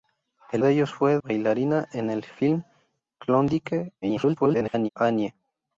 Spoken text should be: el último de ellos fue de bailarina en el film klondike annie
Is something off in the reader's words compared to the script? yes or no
yes